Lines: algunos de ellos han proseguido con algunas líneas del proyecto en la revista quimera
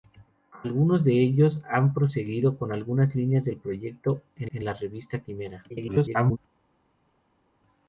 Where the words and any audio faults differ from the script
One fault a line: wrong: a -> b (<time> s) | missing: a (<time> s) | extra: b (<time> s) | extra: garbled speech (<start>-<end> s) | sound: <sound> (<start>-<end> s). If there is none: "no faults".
extra: en (4.5 s)
extra: garbled speech (5.7-6.4 s)